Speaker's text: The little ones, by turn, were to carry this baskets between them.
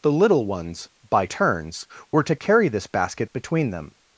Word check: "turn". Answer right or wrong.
wrong